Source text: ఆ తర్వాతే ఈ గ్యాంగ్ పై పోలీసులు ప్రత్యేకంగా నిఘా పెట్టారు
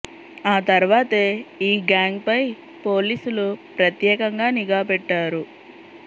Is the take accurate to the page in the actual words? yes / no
yes